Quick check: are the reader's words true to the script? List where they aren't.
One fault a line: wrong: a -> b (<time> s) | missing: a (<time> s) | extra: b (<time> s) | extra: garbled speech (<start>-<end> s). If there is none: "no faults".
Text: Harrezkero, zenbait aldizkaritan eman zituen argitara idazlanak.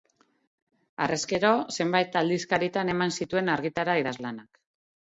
no faults